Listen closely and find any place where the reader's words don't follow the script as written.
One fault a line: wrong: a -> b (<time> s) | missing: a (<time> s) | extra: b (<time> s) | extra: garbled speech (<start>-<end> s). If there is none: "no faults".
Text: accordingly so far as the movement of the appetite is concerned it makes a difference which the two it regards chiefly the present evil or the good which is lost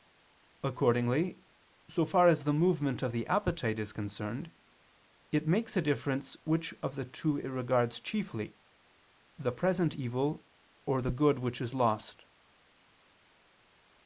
extra: of (6.8 s)